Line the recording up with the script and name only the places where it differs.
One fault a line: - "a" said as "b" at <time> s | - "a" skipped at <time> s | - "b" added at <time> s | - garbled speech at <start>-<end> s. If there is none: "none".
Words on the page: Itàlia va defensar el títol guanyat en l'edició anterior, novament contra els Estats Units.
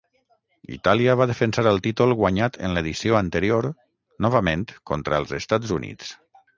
none